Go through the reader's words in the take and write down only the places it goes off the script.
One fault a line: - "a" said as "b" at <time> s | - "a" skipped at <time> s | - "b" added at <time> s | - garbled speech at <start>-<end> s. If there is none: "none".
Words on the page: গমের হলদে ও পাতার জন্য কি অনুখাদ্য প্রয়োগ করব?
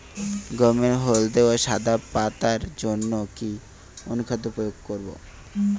- "সাদা" added at 1.6 s